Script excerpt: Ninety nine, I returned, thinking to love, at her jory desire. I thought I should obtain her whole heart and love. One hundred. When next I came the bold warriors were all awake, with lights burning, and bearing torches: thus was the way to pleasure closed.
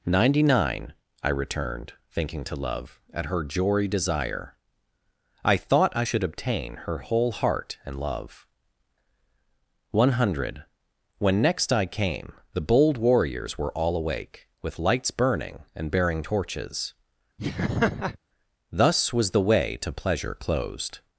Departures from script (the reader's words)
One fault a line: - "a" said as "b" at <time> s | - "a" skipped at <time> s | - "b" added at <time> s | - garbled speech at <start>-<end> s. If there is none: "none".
none